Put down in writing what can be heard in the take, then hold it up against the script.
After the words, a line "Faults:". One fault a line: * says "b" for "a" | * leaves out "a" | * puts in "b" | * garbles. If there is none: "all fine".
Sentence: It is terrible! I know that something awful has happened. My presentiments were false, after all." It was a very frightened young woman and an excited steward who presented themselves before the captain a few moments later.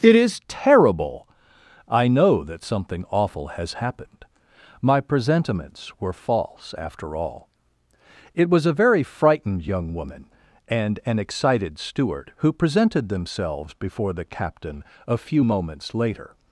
It is terrible! I know that something awful has happened. My presentiments were false, after all." It was a very frightened young woman and an excited steward who presented themselves before the captain a few moments later.
Faults:
all fine